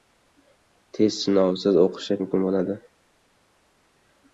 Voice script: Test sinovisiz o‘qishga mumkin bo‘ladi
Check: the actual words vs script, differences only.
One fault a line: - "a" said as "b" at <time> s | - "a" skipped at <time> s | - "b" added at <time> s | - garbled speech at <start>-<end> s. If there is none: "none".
none